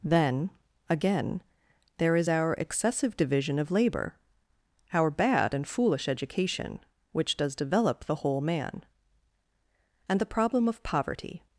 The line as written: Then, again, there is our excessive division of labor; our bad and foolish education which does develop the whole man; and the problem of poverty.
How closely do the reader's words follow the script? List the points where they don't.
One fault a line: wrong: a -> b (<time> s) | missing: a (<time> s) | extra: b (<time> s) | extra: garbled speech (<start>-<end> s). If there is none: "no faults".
no faults